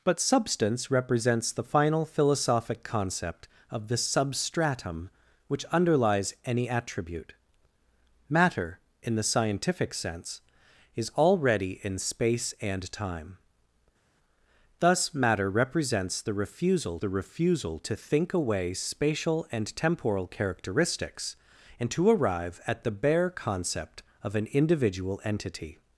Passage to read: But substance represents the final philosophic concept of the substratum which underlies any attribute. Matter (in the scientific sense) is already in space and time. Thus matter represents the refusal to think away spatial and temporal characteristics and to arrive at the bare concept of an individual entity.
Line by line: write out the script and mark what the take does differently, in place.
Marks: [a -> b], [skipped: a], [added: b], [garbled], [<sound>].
But substance represents the final philosophic concept of the substratum which underlies any attribute. Matter (in the scientific sense) is already in space and time. Thus matter represents the refusal [added: the refusal] to think away spatial and temporal characteristics and to arrive at the bare concept of an individual entity.